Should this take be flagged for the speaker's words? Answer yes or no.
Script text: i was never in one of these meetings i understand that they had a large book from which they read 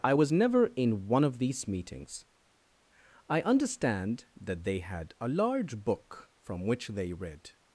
no